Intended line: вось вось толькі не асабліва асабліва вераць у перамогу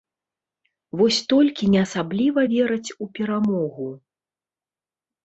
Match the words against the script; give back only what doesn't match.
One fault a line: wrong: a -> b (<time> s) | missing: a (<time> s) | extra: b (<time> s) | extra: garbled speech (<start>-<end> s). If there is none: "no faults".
missing: вось (1.2 s)
missing: асабліва (2.4 s)